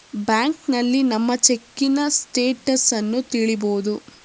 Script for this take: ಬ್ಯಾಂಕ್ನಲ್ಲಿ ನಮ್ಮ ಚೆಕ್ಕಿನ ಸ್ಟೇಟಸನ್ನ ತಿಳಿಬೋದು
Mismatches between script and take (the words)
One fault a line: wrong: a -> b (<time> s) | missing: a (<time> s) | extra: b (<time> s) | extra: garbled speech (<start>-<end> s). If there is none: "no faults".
no faults